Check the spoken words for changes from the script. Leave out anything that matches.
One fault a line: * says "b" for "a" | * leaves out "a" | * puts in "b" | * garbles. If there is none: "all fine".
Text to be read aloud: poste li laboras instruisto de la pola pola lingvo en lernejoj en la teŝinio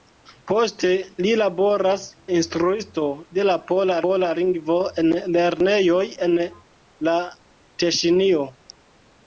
all fine